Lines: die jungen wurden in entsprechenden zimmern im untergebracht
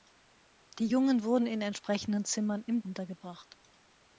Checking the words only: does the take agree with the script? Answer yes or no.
yes